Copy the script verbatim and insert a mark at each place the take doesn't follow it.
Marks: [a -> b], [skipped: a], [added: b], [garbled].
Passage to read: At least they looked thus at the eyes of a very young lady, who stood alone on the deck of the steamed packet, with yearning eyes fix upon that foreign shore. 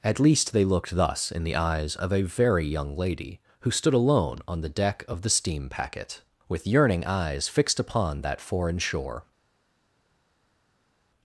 At least they looked thus [at -> in] the eyes of a very young lady, who stood alone on the deck of the [steamed -> steam] packet, with yearning eyes [fix -> fixed] upon that foreign shore.